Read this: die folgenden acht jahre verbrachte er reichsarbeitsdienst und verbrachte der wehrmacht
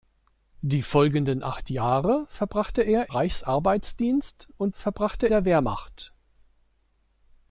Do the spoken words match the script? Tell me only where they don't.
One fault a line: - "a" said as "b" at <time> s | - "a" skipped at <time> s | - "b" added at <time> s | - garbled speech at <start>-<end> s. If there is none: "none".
none